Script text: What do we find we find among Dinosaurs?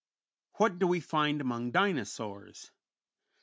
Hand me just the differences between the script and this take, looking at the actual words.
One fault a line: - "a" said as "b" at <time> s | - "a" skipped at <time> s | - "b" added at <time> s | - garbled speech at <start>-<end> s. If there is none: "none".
- "we find" skipped at 1.4 s